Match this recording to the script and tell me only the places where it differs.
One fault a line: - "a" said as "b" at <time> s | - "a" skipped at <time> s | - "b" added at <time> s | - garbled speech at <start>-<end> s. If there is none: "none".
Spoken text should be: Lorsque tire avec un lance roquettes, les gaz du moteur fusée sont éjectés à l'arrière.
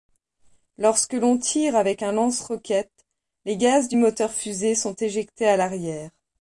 - "l'on" added at 1.1 s